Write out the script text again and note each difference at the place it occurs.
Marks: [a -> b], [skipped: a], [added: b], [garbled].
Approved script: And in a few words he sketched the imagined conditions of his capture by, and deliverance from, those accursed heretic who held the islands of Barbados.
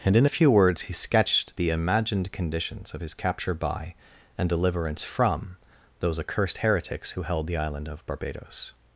And in a few words he sketched the imagined conditions of his capture by, and deliverance from, those accursed [heretic -> heretics] who held the [islands -> island] of Barbados.